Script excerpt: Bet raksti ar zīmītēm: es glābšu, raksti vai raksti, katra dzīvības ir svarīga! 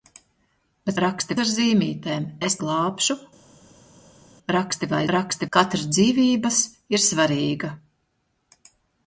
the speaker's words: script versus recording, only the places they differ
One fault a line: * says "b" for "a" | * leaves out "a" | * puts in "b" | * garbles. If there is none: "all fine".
all fine